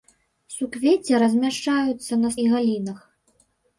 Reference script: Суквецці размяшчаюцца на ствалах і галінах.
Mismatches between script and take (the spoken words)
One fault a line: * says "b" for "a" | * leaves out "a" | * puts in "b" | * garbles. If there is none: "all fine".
* leaves out "ствалах"